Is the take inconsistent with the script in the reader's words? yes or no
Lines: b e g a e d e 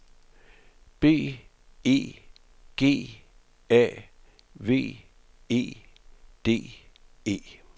yes